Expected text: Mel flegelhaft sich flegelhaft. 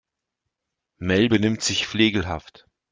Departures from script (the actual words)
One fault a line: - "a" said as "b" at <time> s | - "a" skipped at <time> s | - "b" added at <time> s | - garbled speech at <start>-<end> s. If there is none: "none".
- "flegelhaft" said as "benimmt" at 1.3 s